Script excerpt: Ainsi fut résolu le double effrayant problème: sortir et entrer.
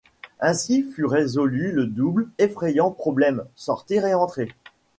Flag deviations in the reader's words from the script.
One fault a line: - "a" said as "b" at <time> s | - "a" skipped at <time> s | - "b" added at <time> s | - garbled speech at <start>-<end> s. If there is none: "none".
none